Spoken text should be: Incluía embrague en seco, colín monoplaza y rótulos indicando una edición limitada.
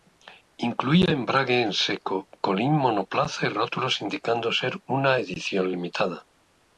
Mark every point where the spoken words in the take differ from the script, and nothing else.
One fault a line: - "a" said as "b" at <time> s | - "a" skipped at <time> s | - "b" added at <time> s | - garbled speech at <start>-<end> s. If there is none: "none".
- "ser" added at 4.5 s